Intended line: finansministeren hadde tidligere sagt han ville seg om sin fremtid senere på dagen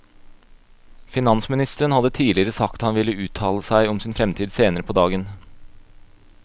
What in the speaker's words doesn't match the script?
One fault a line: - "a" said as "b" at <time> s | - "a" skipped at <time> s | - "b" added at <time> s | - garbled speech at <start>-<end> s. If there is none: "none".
- "uttale" added at 3.3 s